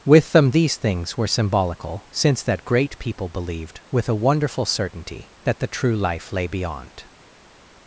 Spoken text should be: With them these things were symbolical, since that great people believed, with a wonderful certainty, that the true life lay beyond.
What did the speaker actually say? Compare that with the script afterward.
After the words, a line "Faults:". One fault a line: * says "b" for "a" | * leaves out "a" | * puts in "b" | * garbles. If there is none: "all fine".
With them these things were symbolical, since that great people believed, with a wonderful certainty, that the true life lay beyond.
Faults:
all fine